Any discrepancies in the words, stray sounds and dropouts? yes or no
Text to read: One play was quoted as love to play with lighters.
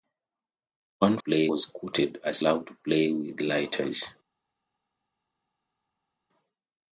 no